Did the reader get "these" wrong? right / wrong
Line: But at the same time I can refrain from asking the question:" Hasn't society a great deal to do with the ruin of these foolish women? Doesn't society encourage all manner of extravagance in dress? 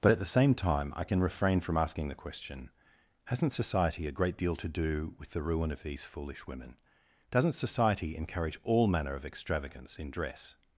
right